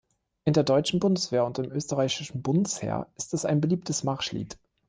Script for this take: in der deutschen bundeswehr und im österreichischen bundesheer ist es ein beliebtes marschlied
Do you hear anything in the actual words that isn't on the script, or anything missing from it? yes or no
no